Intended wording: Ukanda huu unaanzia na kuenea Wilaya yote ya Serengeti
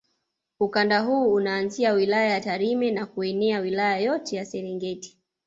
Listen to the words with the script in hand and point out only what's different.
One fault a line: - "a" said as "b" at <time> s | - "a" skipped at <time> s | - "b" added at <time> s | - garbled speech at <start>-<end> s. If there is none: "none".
- "wilaya ya Tarime" added at 1.9 s